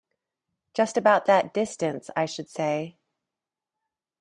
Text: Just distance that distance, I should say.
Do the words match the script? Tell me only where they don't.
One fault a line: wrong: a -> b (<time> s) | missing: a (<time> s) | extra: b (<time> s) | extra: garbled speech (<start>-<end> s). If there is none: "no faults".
wrong: distance -> about (1.0 s)